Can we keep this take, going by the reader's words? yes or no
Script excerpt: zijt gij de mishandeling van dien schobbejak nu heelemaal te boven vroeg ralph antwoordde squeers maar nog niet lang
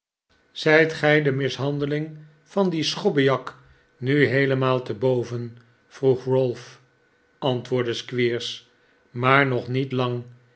yes